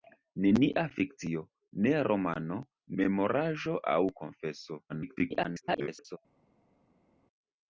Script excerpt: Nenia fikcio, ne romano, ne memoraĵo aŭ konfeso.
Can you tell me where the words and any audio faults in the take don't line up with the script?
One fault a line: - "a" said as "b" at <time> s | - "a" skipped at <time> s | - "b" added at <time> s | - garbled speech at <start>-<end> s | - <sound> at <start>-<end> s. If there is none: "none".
- "ne" skipped at 2.6 s
- garbled speech at 4.9-6.2 s